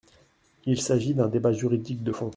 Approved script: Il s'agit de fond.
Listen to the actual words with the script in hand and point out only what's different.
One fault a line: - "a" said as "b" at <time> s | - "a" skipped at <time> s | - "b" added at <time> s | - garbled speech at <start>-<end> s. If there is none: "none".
- "d'un débat juridique" added at 1.1 s